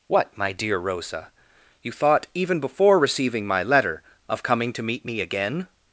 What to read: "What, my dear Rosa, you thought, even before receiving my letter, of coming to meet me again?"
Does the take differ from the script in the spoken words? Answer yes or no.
no